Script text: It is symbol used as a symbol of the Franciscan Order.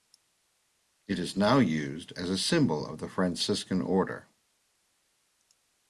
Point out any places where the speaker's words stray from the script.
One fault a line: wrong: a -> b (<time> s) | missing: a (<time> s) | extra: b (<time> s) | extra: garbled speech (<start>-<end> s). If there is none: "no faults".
wrong: symbol -> now (1.4 s)